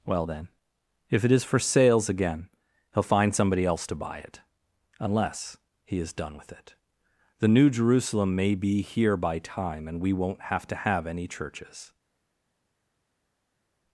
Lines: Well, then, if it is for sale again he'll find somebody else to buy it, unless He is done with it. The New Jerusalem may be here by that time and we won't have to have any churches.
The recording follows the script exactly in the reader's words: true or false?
false